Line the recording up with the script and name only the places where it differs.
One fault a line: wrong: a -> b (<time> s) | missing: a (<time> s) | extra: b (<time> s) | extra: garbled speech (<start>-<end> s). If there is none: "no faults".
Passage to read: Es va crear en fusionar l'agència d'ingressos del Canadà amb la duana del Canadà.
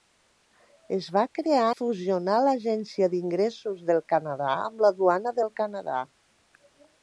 missing: en (1.7 s)